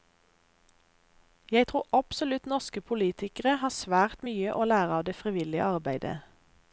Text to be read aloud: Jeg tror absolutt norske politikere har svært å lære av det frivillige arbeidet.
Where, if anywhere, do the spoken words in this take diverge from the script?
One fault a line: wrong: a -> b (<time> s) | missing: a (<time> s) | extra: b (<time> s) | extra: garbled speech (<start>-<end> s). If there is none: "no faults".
extra: mye (4.3 s)